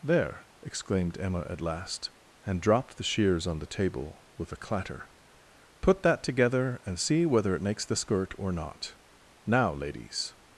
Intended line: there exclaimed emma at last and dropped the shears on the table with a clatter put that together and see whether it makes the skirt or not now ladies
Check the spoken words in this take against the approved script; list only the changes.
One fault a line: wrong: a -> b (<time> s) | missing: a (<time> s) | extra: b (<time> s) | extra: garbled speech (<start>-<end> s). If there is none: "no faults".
no faults